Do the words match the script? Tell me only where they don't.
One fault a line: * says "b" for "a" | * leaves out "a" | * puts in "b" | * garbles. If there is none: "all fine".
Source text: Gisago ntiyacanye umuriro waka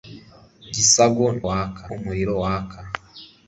* says "waka" for "ntiyacanye"